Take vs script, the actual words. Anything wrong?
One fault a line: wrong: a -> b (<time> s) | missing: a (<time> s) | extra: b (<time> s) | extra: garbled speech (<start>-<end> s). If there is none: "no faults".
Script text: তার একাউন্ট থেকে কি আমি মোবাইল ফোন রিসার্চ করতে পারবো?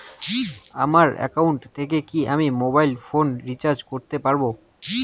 wrong: তার -> আমার (0.8 s)